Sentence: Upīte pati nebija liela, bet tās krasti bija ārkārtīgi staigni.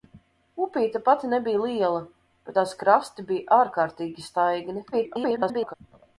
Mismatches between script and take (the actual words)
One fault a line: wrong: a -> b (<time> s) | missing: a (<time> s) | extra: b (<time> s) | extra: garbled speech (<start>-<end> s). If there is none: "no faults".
extra: garbled speech (4.9-5.7 s)